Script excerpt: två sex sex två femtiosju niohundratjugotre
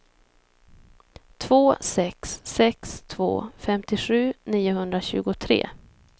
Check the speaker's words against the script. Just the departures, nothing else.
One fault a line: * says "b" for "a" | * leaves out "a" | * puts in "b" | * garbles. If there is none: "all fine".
all fine